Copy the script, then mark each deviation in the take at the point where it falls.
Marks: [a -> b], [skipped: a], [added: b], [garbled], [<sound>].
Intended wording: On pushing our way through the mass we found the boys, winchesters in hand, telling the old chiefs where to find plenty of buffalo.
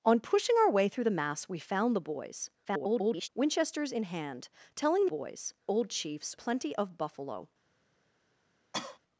On pushing our way through the mass we found the boys, [garbled] winchesters in hand, telling [the -> boys] old chiefs [skipped: where to find] plenty of buffalo. [cough]